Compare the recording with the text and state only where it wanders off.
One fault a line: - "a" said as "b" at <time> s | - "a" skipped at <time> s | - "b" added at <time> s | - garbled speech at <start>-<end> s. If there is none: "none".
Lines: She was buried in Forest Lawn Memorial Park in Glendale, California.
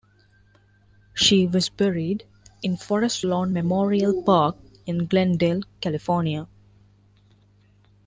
none